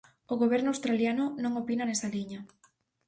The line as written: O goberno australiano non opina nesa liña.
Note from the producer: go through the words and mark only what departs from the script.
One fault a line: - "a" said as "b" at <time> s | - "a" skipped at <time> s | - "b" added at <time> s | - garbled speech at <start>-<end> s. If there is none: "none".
none